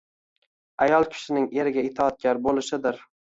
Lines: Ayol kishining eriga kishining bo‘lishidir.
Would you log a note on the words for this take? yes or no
yes